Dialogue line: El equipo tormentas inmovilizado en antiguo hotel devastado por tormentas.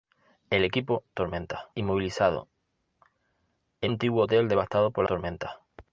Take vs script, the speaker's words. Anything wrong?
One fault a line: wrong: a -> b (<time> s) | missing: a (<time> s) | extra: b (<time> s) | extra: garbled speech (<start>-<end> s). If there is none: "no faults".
no faults